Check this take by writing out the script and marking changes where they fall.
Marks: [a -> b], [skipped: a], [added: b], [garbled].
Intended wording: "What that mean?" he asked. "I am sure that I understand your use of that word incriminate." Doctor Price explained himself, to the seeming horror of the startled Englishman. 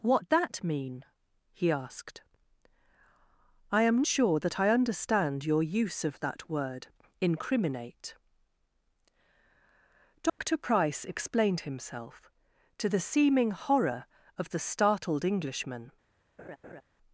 "What that mean?" he asked. "I am sure that I understand your use of that word incriminate." Doctor Price explained himself, to the seeming horror of the startled Englishman.